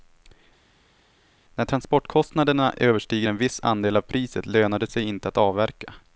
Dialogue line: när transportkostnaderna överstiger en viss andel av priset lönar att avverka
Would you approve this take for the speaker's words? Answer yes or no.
no